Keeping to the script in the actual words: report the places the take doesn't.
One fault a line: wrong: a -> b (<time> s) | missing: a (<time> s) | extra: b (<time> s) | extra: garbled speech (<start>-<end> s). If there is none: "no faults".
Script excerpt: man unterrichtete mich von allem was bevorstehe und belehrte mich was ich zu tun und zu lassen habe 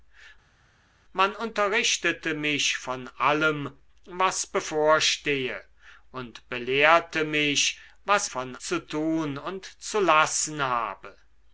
wrong: ich -> von (8.2 s)